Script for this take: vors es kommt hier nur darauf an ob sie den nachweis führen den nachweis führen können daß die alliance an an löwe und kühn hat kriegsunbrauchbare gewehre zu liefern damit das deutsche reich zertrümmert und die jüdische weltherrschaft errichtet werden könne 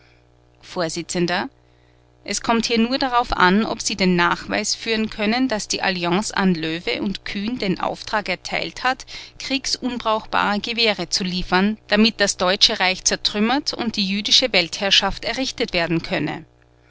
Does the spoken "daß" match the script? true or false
true